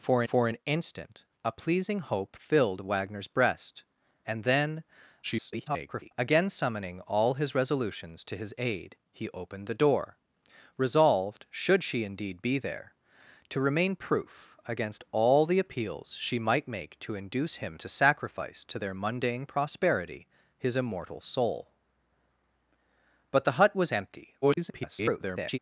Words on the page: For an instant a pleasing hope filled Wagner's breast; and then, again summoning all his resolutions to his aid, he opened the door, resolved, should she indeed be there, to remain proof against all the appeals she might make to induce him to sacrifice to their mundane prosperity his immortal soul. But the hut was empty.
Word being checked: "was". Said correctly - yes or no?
yes